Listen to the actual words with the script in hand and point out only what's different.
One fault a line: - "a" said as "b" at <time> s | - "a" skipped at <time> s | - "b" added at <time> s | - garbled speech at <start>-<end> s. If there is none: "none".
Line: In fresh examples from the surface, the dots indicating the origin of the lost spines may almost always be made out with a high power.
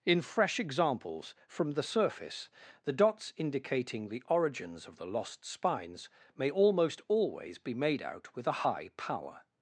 - "origin" said as "origins" at 4.3 s